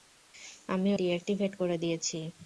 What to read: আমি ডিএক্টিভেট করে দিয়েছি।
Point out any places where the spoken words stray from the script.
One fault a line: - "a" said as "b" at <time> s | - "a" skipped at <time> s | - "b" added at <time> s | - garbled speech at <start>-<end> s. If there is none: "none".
none